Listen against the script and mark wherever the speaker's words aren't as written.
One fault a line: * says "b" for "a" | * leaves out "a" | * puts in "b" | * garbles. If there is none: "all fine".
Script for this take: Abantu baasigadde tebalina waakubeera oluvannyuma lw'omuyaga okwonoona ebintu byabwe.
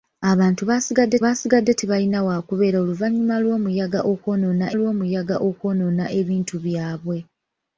* puts in "baasigadde"
* puts in "lw'omuyaga okwonoona"